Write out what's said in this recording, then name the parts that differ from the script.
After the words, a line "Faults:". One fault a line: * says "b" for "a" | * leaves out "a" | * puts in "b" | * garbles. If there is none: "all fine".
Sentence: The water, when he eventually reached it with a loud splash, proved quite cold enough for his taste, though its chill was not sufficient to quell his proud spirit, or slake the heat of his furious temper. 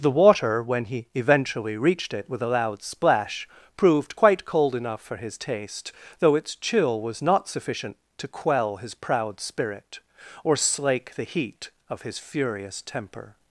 The water, when he eventually reached it with a loud splash, proved quite cold enough for his taste, though its chill was not sufficient to quell his proud spirit, or slake the heat of his furious temper.
Faults:
all fine